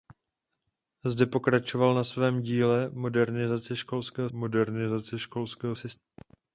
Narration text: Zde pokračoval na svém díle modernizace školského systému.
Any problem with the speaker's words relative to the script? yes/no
yes